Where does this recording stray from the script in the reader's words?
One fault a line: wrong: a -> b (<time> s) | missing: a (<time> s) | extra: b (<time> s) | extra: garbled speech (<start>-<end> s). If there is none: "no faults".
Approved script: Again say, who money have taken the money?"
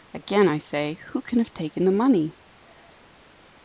extra: I (0.4 s)
wrong: money -> can (1.2 s)